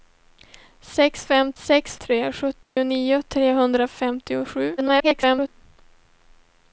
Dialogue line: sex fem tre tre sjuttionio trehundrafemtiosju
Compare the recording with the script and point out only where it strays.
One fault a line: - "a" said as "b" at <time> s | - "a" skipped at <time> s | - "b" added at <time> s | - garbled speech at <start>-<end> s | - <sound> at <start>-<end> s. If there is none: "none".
- "tre" said as "sex" at 1.6 s
- dropout at 2.6-2.8 s
- garbled speech at 4.8-5.5 s